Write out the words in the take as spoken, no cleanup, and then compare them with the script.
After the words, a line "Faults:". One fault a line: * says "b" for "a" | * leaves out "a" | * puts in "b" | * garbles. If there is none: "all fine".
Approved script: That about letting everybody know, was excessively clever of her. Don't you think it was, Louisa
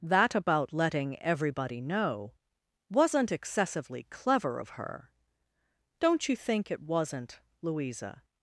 That about letting everybody know, wasn't excessively clever of her. Don't you think it wasn't, Louisa
Faults:
* says "wasn't" for "was"
* says "wasn't" for "was"